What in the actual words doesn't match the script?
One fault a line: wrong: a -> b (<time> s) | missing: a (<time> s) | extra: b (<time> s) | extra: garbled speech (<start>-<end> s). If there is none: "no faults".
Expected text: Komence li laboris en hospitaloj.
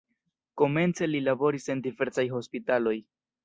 extra: diversaj (1.9 s)